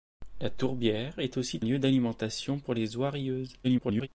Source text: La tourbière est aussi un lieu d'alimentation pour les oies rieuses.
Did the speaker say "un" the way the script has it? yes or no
no